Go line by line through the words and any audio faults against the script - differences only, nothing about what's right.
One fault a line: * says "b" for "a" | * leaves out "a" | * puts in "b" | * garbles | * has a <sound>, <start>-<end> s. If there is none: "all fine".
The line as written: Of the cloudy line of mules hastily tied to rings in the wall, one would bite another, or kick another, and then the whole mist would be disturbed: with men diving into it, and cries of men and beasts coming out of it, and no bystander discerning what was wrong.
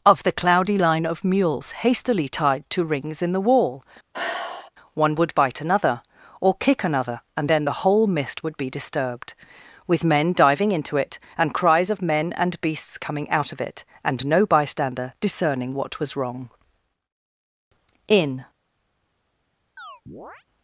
* has a sigh, 4.1-4.7 s
* puts in "In"
* has a chirp, 19.8-20.4 s